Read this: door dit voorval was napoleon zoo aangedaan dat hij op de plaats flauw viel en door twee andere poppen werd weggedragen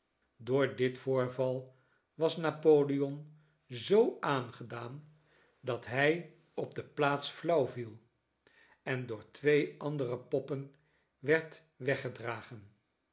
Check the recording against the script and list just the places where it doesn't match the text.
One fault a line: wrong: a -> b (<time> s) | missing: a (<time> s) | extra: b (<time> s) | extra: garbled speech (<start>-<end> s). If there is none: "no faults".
no faults